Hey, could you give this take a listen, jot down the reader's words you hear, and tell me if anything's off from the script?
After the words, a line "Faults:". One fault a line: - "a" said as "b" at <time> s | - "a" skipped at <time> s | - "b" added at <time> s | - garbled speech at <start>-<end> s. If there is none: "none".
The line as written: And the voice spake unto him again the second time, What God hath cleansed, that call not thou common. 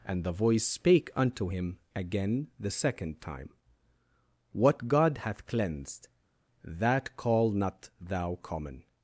And the voice spake unto him again the second time, What God hath cleansed, that call not thou common.
Faults:
none